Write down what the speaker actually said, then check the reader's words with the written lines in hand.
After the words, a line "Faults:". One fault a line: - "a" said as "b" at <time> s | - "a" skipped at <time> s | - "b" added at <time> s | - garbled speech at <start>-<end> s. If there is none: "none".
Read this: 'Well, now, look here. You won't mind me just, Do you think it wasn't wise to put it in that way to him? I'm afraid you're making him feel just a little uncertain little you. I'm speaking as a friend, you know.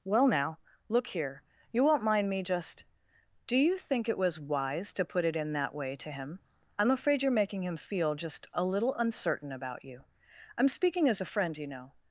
'Well, now, look here. You won't mind me just, Do you think it was wise to put it in that way to him? I'm afraid you're making him feel just a little uncertain about you. I'm speaking as a friend, you know.
Faults:
- "wasn't" said as "was" at 4.2 s
- "little" said as "about" at 9.5 s